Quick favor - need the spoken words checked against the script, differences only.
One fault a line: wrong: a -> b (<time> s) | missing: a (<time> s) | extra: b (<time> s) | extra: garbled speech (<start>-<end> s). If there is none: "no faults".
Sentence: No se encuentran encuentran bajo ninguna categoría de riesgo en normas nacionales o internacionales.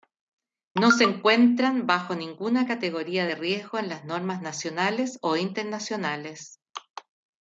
missing: encuentran (1.9 s)
extra: las (3.9 s)